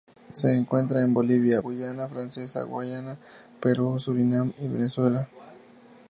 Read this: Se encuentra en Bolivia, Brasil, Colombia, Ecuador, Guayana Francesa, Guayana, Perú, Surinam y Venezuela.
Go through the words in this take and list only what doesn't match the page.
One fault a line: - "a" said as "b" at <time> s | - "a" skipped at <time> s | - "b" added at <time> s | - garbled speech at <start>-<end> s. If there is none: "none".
- "Brasil Colombia Ecuador" skipped at 1.6 s